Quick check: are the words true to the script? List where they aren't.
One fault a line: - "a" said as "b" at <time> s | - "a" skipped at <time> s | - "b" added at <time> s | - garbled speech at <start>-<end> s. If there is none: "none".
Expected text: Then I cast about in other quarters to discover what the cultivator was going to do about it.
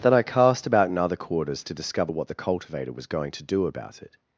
none